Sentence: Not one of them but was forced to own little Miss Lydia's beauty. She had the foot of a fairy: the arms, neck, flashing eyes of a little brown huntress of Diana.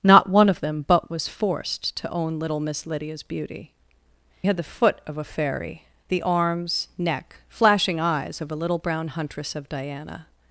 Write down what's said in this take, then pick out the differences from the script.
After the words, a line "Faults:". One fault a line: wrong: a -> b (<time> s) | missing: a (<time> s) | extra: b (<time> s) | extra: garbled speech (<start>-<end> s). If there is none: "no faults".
Not one of them but was forced to own little Miss Lydia's beauty. Had the foot of a fairy: the arms, neck, flashing eyes of a little brown huntress of Diana.
Faults:
missing: She (3.7 s)